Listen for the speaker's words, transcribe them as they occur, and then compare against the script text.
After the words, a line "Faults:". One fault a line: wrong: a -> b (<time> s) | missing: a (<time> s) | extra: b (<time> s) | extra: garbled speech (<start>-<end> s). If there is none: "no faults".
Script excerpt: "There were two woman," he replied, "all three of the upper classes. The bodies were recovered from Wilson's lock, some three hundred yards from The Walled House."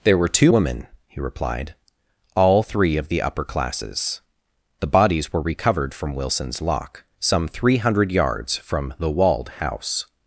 "There were two woman," he replied, "all three of the upper classes. The bodies were recovered from Wilson's lock, some three hundred yards from The Walled House."
Faults:
no faults